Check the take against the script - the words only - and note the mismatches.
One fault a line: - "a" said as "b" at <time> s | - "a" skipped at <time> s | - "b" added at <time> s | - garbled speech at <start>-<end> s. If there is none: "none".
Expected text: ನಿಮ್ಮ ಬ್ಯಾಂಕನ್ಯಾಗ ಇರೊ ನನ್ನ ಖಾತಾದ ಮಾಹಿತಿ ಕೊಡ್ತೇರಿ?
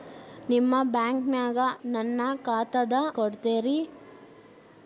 - "ಇರೊ" skipped at 1.6 s
- "ಮಾಹಿತಿ" skipped at 2.9 s